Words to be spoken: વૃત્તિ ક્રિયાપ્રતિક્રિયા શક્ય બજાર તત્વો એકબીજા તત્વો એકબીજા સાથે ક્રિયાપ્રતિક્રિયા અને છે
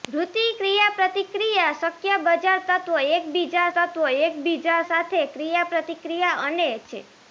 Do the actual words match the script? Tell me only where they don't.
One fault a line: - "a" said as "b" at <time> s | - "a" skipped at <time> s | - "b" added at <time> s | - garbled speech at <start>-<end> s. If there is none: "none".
none